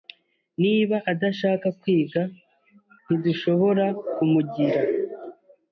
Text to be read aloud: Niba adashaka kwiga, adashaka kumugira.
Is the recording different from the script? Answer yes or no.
yes